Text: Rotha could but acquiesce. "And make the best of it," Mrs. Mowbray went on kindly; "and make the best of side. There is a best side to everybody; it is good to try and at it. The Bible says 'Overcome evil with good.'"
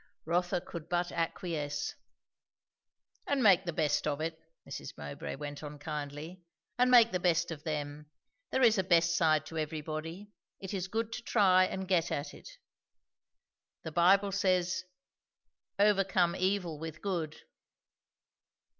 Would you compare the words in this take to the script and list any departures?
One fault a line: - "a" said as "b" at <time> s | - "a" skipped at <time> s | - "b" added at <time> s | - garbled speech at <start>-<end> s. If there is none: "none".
- "side" said as "them" at 7.6 s
- "get" added at 11.9 s